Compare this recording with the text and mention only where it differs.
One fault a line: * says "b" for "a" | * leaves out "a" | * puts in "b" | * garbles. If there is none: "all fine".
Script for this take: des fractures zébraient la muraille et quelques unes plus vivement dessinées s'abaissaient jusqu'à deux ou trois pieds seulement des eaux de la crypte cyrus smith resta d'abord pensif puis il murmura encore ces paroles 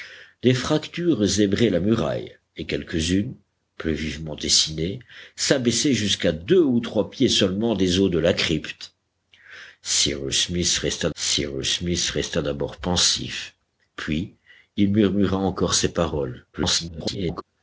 * puts in "cyrus smith resta"
* garbles